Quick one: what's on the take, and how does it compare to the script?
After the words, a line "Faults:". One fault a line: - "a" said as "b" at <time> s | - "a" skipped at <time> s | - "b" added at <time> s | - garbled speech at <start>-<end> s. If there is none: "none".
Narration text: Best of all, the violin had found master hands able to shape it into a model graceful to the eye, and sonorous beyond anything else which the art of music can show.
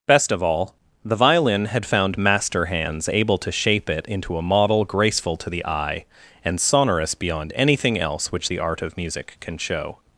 Best of all, the violin had found master hands able to shape it into a model graceful to the eye, and sonorous beyond anything else which the art of music can show.
Faults:
none